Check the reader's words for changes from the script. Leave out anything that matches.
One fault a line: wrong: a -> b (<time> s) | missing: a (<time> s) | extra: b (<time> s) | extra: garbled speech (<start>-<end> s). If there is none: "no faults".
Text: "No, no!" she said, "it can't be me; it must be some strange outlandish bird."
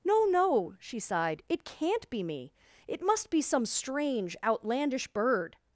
wrong: said -> sighed (1.0 s)